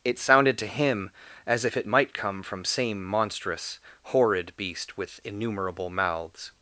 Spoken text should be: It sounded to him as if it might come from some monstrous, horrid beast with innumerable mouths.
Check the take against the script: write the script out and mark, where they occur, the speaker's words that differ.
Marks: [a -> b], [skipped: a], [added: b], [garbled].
It sounded to him as if it might come from [some -> same] monstrous, horrid beast with innumerable mouths.